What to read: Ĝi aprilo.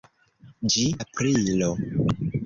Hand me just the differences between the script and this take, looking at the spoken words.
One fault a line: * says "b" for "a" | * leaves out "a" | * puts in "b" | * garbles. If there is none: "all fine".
all fine